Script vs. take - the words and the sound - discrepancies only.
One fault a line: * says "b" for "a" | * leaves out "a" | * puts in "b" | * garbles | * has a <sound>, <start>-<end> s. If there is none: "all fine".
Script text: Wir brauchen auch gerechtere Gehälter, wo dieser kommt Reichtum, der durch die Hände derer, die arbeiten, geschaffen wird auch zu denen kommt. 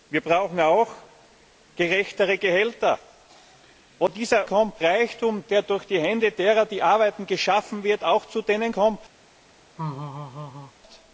* has a laugh, 9.8-10.7 s